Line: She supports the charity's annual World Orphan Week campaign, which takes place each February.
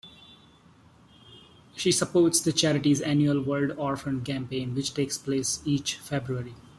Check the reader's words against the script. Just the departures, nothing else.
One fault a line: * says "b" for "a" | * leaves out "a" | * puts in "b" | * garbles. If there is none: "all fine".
* leaves out "Week"